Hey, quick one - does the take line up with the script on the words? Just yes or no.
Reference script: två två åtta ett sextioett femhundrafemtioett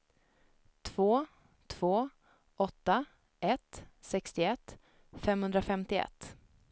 yes